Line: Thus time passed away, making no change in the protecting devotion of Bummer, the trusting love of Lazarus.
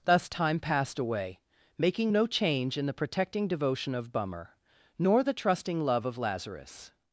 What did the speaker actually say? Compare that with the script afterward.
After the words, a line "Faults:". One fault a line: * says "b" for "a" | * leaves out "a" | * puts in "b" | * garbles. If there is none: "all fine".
Thus time passed away, making no change in the protecting devotion of Bummer, nor the trusting love of Lazarus.
Faults:
* puts in "nor"